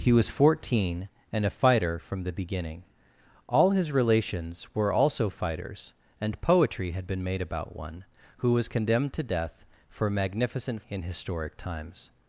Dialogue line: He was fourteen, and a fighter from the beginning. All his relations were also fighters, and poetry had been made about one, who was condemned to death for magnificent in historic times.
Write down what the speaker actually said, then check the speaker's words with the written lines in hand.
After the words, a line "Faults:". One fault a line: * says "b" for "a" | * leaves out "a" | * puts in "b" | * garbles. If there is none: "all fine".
He was fourteen, and a fighter from the beginning. All his relations were also fighters, and poetry had been made about one, who was condemned to death for magnificent in historic times.
Faults:
all fine